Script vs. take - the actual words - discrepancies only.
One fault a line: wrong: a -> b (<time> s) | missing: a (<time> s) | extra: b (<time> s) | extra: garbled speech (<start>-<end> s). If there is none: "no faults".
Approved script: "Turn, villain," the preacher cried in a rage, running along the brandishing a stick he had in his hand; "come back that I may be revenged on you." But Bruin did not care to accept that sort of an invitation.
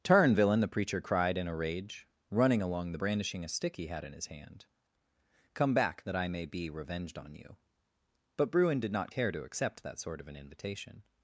no faults